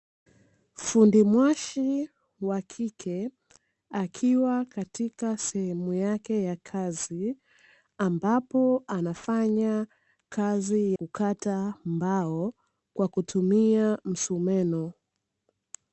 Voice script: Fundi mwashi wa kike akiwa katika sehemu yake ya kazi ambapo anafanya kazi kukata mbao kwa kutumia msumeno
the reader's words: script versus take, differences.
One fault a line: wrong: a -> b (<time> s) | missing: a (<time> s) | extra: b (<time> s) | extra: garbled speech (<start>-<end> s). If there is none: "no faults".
no faults